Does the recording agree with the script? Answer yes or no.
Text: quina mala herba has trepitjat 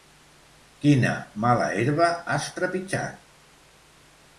yes